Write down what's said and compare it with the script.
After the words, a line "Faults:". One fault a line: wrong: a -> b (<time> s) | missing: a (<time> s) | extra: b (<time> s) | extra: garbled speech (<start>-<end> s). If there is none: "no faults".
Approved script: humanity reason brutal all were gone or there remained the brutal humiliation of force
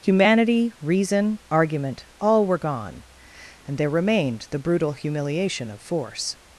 humanity reason argument all were gone and there remained the brutal humiliation of force
Faults:
wrong: brutal -> argument (1.5 s)
wrong: or -> and (3.7 s)